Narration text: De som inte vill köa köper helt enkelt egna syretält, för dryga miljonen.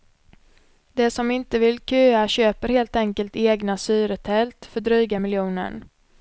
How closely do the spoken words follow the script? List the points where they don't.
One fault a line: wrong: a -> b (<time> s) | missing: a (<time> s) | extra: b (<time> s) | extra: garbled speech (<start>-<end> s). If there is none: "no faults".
no faults